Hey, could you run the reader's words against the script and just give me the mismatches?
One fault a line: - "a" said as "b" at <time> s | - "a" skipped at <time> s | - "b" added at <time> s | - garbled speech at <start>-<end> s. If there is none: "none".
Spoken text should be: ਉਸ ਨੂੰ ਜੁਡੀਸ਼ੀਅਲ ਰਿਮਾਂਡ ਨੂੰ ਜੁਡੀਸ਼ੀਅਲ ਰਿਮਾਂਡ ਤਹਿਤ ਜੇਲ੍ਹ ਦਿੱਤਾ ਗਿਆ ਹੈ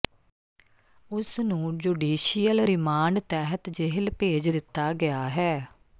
- "ਨੂੰ ਜੁਡੀਸ਼ੀਅਲ ਰਿਮਾਂਡ" skipped at 3.2 s
- "ਭੇਜ" added at 4.2 s